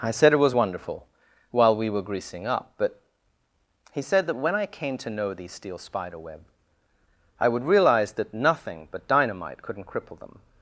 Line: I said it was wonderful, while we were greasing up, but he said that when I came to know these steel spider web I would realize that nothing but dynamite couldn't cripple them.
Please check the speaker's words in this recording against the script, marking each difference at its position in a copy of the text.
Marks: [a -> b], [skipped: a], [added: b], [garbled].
I said it was wonderful, while we were greasing up, but he said that when I came to know these steel spider web I would realize that nothing but dynamite couldn't cripple them.